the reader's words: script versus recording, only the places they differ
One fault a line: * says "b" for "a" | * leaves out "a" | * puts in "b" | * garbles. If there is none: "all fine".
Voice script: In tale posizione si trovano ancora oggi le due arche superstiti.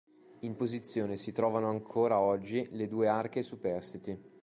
* leaves out "tale"